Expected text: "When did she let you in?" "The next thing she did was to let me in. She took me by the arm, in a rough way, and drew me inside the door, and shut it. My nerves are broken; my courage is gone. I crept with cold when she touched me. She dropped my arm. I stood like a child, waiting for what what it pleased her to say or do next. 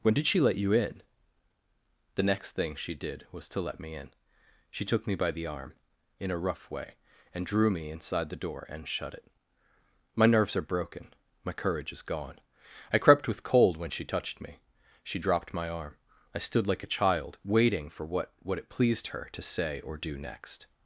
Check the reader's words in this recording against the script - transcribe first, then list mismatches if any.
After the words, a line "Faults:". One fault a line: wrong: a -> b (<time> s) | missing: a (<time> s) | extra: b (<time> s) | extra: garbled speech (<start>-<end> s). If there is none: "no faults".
"When did she let you in?" "The next thing she did was to let me in. She took me by the arm, in a rough way, and drew me inside the door, and shut it. My nerves are broken; my courage is gone. I crept with cold when she touched me. She dropped my arm. I stood like a child, waiting for what what it pleased her to say or do next.
Faults:
no faults